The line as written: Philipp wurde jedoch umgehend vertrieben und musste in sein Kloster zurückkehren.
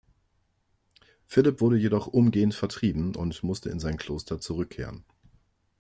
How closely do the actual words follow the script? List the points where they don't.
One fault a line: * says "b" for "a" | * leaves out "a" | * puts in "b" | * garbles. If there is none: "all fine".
all fine